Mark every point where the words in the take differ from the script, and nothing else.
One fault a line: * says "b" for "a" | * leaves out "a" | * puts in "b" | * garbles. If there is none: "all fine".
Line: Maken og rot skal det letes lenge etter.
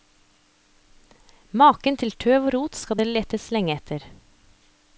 * puts in "til tøv"